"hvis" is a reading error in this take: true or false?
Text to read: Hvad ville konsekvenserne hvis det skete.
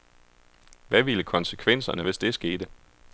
false